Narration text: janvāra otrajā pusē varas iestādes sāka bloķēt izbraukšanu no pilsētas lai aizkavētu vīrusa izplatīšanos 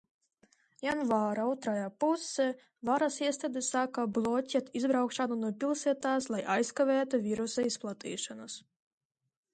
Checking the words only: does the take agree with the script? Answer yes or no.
yes